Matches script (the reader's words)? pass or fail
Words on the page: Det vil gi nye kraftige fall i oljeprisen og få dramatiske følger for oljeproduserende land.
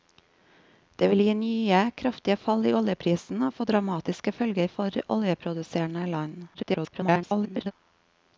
fail